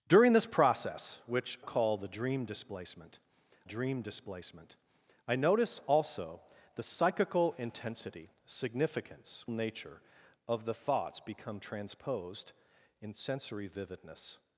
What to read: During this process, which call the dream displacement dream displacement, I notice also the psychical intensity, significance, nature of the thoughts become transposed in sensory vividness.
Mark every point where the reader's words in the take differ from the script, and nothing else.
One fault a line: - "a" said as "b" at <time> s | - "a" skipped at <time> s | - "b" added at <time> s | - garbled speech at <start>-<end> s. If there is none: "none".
none